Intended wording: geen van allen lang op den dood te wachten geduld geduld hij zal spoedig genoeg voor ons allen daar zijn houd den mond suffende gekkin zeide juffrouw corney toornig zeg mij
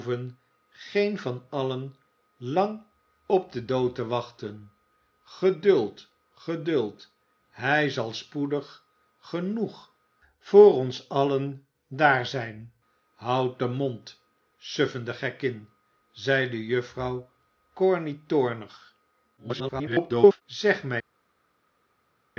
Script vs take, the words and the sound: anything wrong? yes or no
yes